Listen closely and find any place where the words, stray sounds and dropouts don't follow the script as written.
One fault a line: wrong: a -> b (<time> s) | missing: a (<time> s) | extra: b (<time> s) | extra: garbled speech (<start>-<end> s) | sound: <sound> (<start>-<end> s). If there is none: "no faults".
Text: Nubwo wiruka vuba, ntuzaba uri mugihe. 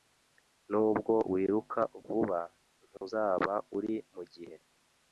sound: dropout (3.0-3.0 s)